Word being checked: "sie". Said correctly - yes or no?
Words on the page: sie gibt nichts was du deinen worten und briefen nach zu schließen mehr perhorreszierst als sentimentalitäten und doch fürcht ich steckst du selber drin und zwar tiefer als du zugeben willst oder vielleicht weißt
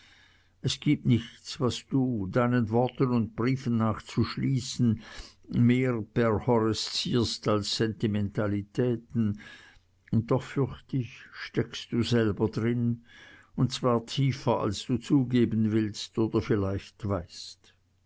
no